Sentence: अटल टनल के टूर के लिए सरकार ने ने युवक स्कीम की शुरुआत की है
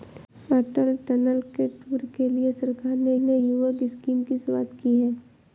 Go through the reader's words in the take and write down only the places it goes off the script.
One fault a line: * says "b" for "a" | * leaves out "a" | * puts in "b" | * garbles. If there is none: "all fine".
all fine